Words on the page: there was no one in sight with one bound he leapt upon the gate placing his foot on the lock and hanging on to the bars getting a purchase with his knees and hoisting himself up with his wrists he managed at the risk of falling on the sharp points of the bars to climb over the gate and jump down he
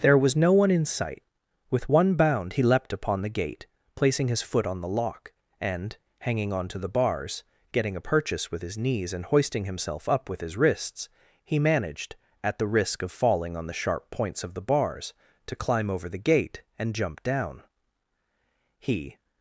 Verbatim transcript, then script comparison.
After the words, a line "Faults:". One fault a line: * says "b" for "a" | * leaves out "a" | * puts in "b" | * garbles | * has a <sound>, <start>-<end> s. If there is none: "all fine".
there was no one in sight with one bound he leapt upon the gate placing his foot on the lock and hanging on to the bars getting a purchase with his knees and hoisting himself up with his wrists he managed at the risk of falling on the sharp points of the bars to climb over the gate and jump down he
Faults:
all fine